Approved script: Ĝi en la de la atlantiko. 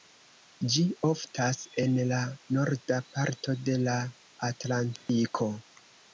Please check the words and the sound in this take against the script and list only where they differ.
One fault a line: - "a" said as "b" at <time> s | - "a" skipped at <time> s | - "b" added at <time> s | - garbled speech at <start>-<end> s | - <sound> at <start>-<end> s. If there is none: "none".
- "oftas" added at 1.1 s
- "norda parto" added at 2.6 s
- dropout at 5.0-5.1 s